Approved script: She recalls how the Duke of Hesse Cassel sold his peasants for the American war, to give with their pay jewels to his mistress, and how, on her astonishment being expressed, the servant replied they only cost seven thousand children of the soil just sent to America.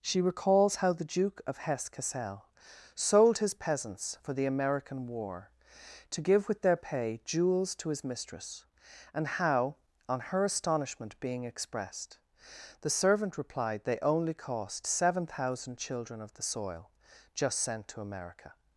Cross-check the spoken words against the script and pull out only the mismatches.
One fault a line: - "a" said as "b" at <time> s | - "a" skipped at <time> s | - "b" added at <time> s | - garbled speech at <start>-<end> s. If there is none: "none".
none